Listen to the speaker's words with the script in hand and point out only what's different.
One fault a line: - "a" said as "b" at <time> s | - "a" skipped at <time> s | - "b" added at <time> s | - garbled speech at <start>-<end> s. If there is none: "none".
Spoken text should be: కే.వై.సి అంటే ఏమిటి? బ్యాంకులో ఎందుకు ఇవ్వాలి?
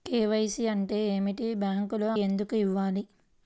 none